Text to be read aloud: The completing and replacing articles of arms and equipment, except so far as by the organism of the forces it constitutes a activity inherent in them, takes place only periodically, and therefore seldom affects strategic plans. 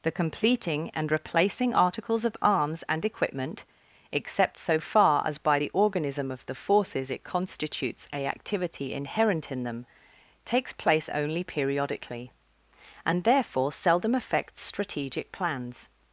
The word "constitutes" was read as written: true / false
true